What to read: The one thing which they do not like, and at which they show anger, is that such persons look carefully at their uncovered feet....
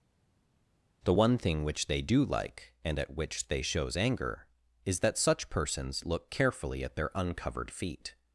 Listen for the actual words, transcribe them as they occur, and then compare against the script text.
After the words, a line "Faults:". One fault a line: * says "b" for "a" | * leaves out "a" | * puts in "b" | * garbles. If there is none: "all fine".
The one thing which they do like, and at which they shows anger, is that such persons look carefully at their uncovered feet....
Faults:
* leaves out "not"
* says "shows" for "show"